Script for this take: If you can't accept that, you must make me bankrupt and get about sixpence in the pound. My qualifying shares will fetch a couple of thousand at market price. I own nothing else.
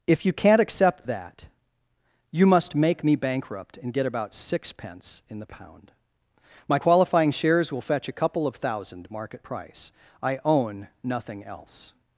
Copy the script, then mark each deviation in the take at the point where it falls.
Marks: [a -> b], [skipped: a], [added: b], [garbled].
If you can't accept that, you must make me bankrupt and get about sixpence in the pound. My qualifying shares will fetch a couple of thousand [skipped: at] market price. I own nothing else.